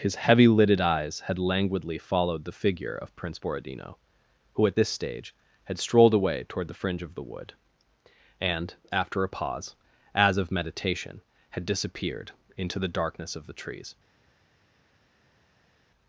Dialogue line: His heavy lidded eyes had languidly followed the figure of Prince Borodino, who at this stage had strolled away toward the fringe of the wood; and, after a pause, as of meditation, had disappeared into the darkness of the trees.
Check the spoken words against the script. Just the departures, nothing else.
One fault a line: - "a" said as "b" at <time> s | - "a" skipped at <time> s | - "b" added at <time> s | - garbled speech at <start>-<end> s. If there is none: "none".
none